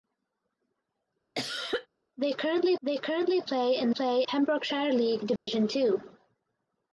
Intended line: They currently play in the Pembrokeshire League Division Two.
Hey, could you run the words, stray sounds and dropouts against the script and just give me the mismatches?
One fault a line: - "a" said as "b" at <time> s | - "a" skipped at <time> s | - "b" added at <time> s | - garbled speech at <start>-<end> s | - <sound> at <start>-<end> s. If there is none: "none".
- cough at 1.3-1.9 s
- "they currently" added at 2.8 s
- "the" said as "play" at 3.9 s
- dropout at 5.4-5.5 s